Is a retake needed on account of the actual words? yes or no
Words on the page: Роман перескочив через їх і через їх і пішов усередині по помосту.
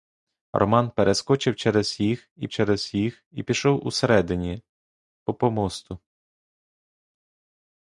no